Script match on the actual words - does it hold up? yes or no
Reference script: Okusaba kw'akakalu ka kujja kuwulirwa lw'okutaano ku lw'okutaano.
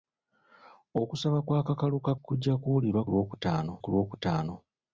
yes